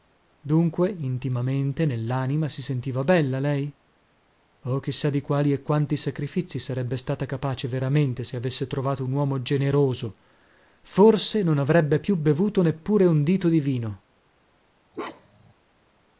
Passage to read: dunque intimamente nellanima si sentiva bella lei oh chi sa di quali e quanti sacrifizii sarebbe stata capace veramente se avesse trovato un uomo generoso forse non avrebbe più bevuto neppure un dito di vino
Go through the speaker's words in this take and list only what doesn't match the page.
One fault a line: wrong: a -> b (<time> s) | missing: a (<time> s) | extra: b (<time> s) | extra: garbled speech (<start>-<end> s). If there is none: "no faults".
no faults